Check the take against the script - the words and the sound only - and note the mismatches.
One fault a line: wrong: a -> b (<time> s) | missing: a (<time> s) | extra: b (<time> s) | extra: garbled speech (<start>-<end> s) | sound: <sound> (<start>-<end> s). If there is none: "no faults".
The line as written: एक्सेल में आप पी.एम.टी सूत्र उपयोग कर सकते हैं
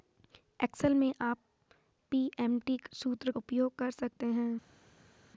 no faults